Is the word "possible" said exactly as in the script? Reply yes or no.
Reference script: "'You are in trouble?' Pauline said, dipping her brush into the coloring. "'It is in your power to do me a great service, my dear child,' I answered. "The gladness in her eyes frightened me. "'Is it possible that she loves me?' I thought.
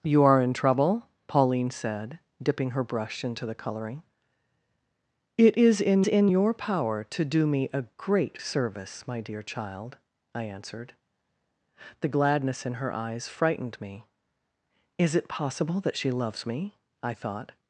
yes